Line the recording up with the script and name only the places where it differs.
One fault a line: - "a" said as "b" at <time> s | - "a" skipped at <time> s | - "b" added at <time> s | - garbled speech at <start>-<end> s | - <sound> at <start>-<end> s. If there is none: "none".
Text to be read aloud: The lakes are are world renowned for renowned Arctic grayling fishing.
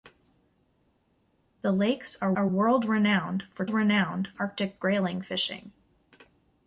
none